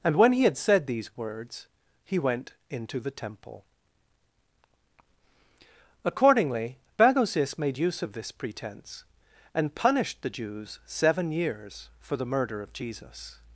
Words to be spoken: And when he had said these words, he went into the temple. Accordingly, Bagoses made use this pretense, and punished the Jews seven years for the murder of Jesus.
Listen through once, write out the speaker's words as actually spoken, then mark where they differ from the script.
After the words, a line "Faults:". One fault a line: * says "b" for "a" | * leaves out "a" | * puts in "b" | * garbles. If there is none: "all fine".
And when he had said these words, he went into the temple. Accordingly, Bagoses made use of this pretense, and punished the Jews seven years for the murder of Jesus.
Faults:
* puts in "of"